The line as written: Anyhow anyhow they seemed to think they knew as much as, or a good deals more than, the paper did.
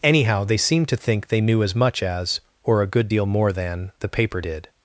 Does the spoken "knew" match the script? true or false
true